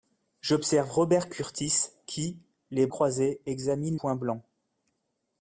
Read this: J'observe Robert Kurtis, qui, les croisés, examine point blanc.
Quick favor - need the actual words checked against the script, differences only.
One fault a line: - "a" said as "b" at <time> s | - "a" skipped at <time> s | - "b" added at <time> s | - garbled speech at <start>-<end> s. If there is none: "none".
none